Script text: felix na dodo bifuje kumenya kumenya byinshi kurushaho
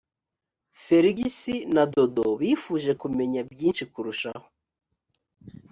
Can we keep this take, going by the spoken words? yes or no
no